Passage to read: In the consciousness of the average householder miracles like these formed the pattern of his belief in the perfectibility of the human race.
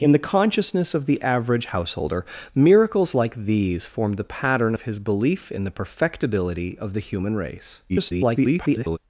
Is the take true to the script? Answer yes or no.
no